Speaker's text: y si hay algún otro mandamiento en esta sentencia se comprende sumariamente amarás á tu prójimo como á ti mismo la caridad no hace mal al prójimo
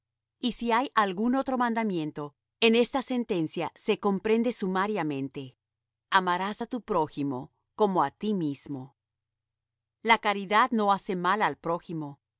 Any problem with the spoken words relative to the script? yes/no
no